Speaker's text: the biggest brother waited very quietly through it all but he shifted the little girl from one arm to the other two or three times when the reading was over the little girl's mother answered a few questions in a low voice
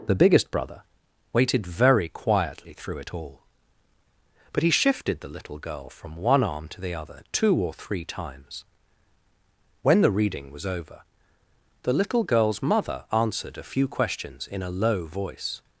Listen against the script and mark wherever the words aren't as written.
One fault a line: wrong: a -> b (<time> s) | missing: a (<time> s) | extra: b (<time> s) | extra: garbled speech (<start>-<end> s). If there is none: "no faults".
no faults